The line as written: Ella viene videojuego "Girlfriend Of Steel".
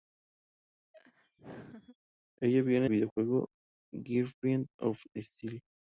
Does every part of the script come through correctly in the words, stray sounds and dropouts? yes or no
no